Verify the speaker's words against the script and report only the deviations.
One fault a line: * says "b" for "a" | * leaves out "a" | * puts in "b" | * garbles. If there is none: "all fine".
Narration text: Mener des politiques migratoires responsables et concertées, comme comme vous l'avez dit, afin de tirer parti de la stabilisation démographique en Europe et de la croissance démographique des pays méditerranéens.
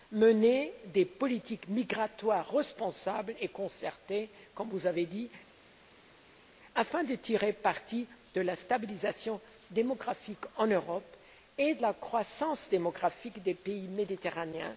* leaves out "comme"